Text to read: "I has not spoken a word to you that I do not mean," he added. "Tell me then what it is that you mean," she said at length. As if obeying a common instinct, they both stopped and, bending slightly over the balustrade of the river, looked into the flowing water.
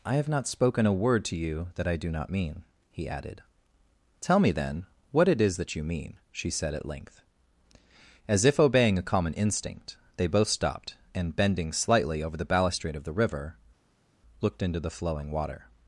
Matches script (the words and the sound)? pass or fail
fail